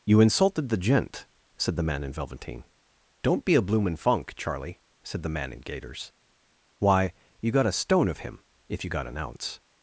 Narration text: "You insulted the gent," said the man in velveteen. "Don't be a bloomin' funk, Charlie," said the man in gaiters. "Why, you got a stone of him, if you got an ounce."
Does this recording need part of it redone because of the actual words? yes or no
no